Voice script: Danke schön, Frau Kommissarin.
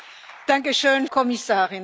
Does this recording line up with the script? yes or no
no